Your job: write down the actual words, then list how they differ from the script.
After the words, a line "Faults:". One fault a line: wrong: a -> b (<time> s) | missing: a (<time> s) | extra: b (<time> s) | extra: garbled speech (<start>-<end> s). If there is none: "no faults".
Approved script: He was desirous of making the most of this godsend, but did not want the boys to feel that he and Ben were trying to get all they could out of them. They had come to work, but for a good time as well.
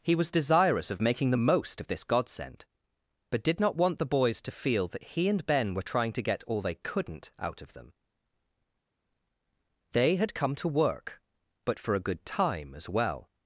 He was desirous of making the most of this godsend, but did not want the boys to feel that he and Ben were trying to get all they couldn't out of them. They had come to work, but for a good time as well.
Faults:
wrong: could -> couldn't (6.8 s)